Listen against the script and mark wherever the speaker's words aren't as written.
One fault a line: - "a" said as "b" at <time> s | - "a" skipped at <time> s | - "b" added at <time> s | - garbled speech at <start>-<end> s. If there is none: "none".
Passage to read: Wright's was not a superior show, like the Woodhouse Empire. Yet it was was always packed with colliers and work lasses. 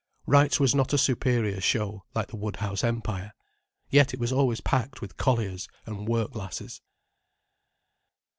- "was" skipped at 4.3 s